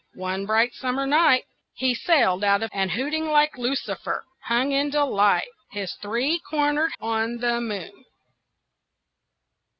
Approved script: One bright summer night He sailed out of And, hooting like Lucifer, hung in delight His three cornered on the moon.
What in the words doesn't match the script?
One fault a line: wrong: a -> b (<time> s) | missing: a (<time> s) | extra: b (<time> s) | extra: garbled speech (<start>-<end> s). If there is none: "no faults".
no faults